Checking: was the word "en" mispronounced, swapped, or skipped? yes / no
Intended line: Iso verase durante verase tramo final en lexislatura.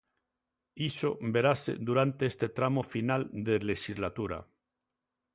yes